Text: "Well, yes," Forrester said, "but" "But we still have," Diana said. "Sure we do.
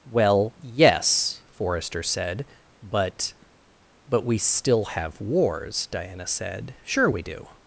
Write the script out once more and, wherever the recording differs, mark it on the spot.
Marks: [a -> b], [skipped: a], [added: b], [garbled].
"Well, yes," Forrester said, "but" "But we still have," [added: wars] Diana said. "Sure we do.